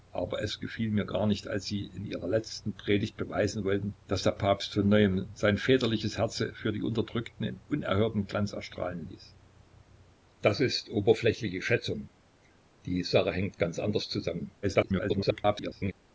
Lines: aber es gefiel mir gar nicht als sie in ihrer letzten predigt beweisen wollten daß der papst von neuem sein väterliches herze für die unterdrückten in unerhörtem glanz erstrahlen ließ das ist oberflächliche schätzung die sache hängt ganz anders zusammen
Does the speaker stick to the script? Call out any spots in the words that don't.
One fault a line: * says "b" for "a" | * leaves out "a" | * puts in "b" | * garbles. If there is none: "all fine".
* garbles